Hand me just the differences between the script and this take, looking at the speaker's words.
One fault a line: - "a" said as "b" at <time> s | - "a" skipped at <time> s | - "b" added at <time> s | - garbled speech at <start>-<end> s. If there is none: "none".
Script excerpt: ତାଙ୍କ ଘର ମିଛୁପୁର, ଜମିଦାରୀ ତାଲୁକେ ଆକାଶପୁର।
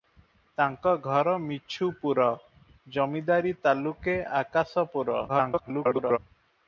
- garbled speech at 5.3-6.2 s